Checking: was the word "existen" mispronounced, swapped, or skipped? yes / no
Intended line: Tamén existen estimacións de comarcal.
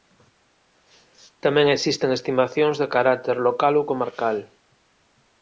no